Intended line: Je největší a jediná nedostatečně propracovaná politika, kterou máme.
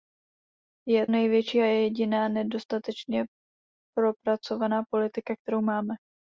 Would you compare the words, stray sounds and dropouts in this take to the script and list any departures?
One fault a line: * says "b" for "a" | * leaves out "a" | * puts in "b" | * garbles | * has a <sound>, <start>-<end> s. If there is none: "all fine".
all fine